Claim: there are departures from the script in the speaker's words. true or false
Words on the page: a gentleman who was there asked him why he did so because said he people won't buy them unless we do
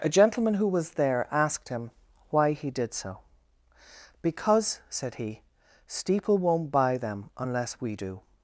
true